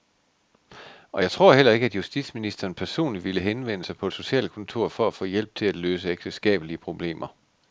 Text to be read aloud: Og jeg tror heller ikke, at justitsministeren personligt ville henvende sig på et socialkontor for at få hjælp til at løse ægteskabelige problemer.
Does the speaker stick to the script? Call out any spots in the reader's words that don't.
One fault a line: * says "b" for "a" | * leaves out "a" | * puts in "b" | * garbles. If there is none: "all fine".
all fine